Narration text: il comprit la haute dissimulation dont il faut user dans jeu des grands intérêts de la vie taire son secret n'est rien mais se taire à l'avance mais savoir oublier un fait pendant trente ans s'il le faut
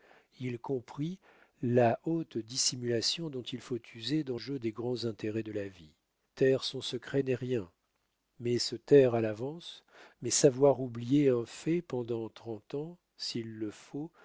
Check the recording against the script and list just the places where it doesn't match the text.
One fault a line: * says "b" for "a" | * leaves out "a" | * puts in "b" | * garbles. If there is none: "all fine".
all fine